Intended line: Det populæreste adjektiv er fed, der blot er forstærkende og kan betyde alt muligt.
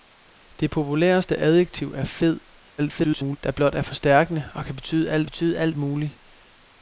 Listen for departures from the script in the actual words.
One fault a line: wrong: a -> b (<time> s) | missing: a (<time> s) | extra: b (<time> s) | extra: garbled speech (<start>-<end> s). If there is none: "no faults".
extra: garbled speech (2.8-3.4 s)
extra: betyde alt (5.3 s)